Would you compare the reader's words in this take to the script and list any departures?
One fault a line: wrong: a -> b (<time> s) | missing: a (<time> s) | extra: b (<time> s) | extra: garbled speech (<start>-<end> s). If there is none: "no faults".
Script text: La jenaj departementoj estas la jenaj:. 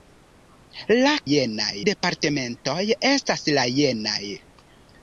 no faults